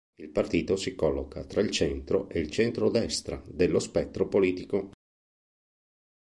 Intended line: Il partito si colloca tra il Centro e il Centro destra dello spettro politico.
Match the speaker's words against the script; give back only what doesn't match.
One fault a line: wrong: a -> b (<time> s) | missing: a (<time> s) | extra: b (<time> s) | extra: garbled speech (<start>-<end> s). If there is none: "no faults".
no faults